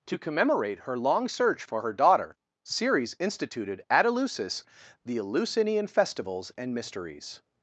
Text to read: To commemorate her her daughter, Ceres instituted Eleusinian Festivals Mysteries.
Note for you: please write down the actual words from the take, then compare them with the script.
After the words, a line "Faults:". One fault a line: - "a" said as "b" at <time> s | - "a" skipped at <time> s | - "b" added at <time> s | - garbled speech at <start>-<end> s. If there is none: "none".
To commemorate her long search for her daughter, Ceres instituted at Eleusis the Eleusinian Festivals and Mysteries.
Faults:
- "long search for" added at 1.0 s
- "at Eleusis the" added at 3.9 s
- "and" added at 6.6 s